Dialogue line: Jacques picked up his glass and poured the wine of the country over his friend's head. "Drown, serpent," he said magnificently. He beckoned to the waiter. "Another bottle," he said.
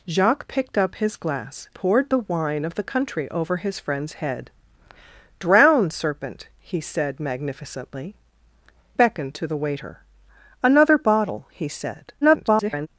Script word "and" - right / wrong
wrong